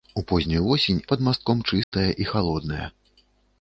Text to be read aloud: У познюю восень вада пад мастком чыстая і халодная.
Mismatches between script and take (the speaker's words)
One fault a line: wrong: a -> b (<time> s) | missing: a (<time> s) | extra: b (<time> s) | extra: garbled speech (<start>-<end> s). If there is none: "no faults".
missing: вада (1.0 s)